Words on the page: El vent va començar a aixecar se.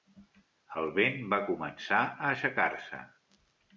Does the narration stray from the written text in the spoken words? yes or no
no